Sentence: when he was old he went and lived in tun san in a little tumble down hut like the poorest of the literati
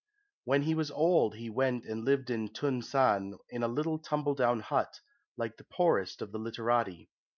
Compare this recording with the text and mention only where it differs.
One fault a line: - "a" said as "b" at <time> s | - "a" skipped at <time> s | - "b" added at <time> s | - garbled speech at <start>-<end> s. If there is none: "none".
none